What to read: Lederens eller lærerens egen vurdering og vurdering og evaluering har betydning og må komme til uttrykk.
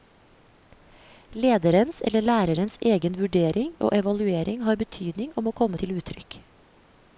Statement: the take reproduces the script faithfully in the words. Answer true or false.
false